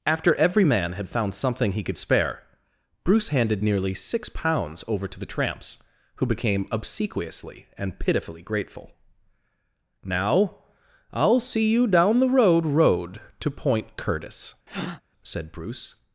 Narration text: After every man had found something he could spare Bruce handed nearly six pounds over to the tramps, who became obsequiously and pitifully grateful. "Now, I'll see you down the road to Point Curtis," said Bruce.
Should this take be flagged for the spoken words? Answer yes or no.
yes